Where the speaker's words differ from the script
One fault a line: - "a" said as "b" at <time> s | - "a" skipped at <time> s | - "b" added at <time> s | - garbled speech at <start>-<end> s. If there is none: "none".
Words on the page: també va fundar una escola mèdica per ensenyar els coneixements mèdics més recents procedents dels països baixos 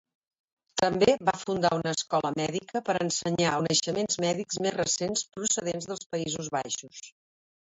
- "els" skipped at 3.5 s